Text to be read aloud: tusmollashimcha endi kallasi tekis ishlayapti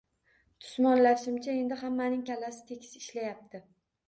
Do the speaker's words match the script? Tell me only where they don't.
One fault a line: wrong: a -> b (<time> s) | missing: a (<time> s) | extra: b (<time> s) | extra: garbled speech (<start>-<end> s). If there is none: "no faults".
extra: hammaning (1.8 s)